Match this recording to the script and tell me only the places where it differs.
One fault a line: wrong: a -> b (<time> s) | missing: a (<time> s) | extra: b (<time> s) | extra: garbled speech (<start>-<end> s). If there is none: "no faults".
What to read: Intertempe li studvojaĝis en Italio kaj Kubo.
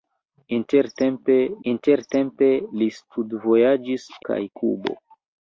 extra: intertempe (1.7 s)
missing: en Italio (4.1 s)